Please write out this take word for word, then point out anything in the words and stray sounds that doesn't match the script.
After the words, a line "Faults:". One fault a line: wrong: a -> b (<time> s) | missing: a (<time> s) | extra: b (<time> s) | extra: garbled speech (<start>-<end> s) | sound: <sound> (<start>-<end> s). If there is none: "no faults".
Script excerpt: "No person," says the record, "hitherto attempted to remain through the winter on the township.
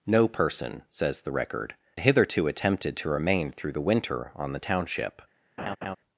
"No person," says the record, "hitherto attempted to remain through the winter on the township.
Faults:
sound: laugh (5.6-6.0 s)